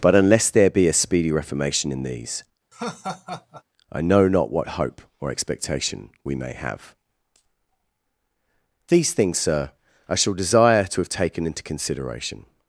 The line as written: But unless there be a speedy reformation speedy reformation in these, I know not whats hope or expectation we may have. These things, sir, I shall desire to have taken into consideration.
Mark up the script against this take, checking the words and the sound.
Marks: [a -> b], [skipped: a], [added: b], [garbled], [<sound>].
But unless there be a speedy reformation [skipped: speedy reformation] in these, [laugh] I know not [whats -> what] hope or expectation we may have. These things, sir, I shall desire to have taken into consideration.